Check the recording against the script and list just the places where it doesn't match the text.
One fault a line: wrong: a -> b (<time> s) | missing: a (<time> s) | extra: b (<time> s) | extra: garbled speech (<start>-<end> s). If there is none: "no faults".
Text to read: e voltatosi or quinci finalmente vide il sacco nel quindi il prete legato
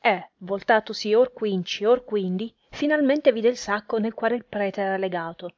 extra: or quindi (1.9 s)
wrong: quindi -> quale (4.2 s)
extra: era (4.8 s)